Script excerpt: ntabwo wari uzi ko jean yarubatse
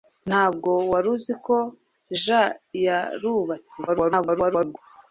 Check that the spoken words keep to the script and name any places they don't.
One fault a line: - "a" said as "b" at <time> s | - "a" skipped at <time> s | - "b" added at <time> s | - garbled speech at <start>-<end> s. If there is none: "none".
- garbled speech at 3.9-4.8 s